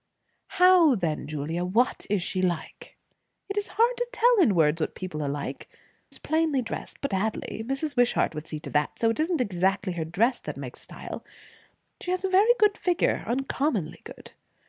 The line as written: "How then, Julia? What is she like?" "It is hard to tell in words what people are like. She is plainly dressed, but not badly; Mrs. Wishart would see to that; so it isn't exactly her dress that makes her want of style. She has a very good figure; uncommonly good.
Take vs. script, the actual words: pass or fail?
fail